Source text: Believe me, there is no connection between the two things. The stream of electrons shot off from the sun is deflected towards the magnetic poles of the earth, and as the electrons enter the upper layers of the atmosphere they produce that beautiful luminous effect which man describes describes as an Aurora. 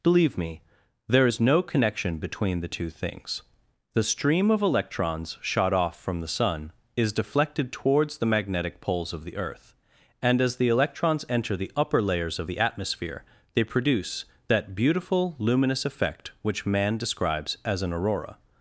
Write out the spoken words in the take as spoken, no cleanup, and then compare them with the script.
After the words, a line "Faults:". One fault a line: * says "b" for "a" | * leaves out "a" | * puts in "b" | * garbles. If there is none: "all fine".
Believe me, there is no connection between the two things. The stream of electrons shot off from the sun is deflected towards the magnetic poles of the earth, and as the electrons enter the upper layers of the atmosphere they produce that beautiful luminous effect which man describes as an Aurora.
Faults:
* leaves out "describes"